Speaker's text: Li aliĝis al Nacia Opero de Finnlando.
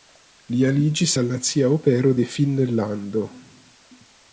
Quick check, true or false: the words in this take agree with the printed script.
true